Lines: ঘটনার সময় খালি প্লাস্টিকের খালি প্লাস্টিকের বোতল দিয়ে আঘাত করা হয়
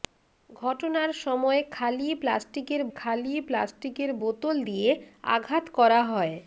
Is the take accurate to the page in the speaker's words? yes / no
yes